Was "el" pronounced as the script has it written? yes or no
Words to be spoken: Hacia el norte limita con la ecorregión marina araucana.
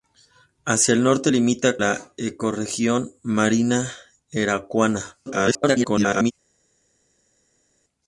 yes